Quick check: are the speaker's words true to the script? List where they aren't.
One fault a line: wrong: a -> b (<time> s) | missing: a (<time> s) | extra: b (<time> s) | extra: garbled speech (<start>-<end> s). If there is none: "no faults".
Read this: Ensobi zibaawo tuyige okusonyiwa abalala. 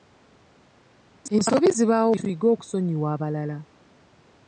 no faults